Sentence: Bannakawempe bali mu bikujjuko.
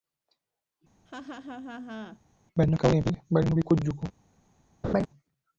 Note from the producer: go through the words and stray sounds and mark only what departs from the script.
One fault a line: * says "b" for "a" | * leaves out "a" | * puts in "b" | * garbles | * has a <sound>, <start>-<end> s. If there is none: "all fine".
* has a laugh, 1.1-2.2 s
* has a laugh, 4.8-5.1 s